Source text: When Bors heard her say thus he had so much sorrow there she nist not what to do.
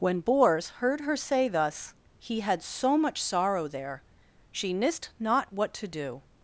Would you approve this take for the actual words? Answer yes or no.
yes